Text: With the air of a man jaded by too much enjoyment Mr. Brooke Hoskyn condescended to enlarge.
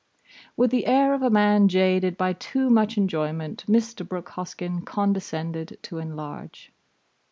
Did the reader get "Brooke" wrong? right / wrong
right